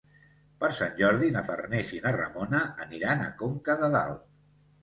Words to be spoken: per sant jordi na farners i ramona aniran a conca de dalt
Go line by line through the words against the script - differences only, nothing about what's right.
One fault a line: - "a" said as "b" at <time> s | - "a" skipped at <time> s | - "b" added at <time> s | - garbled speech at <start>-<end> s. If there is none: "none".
- "na" added at 2.1 s